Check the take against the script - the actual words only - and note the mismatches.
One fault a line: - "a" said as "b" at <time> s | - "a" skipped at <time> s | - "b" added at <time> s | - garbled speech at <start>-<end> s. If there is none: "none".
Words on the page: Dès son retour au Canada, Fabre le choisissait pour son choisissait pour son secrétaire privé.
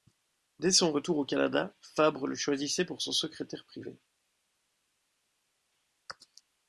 - "choisissait pour son" skipped at 3.1 s